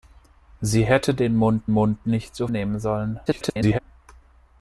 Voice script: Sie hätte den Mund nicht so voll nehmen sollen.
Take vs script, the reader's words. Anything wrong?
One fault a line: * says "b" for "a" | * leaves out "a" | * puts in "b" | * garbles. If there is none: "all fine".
* puts in "Mund"
* leaves out "voll"
* garbles